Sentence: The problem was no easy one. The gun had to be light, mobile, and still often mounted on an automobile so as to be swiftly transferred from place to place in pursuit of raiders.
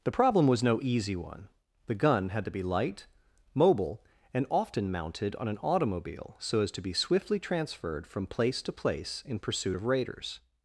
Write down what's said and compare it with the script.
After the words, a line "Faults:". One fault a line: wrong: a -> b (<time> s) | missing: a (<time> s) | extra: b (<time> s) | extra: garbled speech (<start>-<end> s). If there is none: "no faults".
The problem was no easy one. The gun had to be light, mobile, and often mounted on an automobile so as to be swiftly transferred from place to place in pursuit of raiders.
Faults:
missing: still (4.5 s)